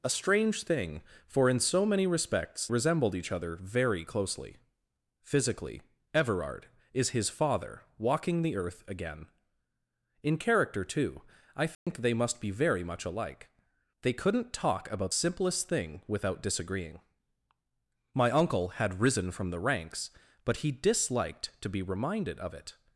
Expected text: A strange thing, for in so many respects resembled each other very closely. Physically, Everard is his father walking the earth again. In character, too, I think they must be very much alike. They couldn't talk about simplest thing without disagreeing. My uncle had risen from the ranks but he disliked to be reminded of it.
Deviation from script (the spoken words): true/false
false